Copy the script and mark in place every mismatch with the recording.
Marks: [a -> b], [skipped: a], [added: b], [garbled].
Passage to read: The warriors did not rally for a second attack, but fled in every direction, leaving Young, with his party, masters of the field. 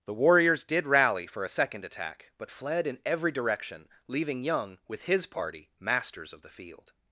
The warriors did [skipped: not] rally for a second attack, but fled in every direction, leaving Young, with his party, masters of the field.